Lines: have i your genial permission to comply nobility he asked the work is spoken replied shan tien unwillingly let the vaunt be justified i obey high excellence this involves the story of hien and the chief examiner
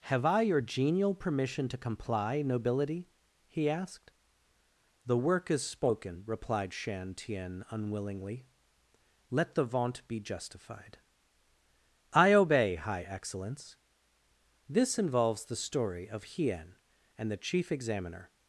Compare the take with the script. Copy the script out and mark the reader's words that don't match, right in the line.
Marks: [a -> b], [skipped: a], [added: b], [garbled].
have i your genial permission to comply nobility he asked the work is spoken replied shan tien unwillingly let the vaunt be justified i obey high excellence this involves the story of hien and the chief examiner